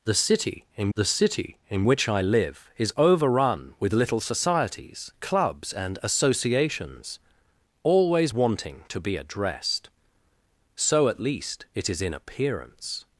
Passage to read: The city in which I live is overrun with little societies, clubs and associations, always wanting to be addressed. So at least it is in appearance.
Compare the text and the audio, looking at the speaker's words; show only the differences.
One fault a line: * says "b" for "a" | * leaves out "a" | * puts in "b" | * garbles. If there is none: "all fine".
* puts in "the city in"